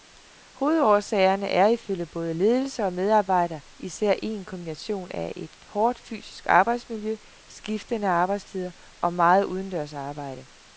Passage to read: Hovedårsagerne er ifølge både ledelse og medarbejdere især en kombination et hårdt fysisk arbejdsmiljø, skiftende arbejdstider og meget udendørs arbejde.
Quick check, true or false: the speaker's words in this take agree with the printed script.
false